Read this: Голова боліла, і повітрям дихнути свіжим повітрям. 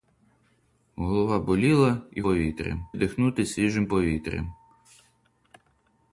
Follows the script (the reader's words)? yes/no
yes